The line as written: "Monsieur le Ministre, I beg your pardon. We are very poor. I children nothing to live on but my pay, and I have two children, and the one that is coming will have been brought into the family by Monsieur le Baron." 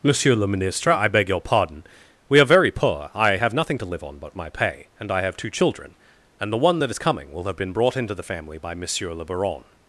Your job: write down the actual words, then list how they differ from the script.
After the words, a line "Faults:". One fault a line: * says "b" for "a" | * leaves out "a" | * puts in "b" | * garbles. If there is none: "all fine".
"Monsieur le Ministre, I beg your pardon. We are very poor. I have nothing to live on but my pay, and I have two children, and the one that is coming will have been brought into the family by Monsieur le Baron."
Faults:
* says "have" for "children"